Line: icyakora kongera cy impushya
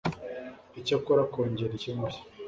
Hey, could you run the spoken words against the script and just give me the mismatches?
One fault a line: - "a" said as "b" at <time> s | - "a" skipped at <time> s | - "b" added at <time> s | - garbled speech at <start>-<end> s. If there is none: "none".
none